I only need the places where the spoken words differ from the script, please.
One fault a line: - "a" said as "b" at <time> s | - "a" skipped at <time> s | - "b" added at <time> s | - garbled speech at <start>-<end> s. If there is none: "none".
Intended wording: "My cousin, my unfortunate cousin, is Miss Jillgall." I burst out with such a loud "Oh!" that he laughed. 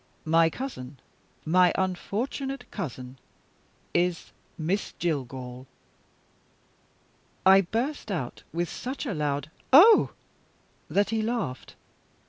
none